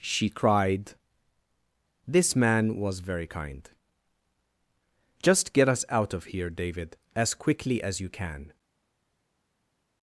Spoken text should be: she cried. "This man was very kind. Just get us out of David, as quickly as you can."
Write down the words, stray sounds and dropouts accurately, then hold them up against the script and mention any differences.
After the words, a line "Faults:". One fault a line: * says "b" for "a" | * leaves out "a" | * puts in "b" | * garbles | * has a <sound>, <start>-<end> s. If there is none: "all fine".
she cried. "This man was very kind. Just get us out of here, David, as quickly as you can."
Faults:
* puts in "here"